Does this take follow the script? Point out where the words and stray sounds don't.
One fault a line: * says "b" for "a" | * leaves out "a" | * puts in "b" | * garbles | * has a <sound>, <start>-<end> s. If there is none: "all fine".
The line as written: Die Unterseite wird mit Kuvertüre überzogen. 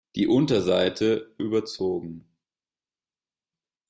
* leaves out "wird mit Kuvertüre"